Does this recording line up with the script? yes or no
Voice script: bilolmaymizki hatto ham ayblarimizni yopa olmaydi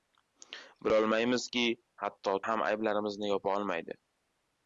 yes